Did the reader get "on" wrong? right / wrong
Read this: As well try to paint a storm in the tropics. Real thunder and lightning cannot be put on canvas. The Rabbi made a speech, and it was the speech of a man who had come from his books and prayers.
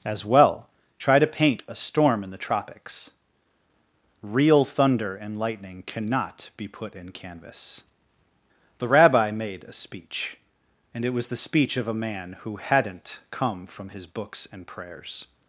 wrong